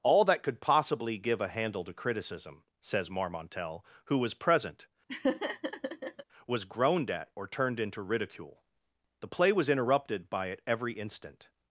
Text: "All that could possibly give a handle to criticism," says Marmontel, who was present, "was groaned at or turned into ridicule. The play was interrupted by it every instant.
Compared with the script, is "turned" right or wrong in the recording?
right